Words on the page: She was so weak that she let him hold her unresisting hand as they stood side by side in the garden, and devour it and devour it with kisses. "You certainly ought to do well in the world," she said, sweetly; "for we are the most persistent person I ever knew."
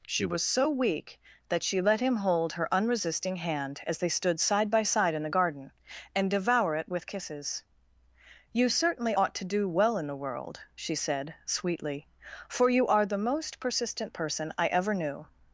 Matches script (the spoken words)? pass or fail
fail